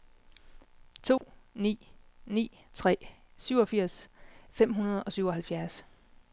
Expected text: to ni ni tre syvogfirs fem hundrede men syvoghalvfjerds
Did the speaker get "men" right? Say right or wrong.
wrong